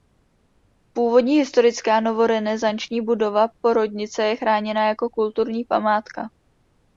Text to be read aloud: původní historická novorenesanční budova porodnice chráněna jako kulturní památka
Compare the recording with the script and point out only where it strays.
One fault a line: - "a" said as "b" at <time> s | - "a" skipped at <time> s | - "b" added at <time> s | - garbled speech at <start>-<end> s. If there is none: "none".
- "je" added at 4.2 s